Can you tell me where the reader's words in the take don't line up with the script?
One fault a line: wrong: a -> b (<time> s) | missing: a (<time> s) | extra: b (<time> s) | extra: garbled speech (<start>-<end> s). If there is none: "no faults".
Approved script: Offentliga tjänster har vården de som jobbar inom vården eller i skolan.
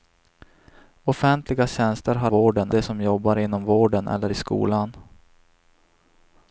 no faults